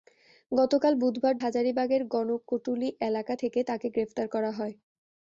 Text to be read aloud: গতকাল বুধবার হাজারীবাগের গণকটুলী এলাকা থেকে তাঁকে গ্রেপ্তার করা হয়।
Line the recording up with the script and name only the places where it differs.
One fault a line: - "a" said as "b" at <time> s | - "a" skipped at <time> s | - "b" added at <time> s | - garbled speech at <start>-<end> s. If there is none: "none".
none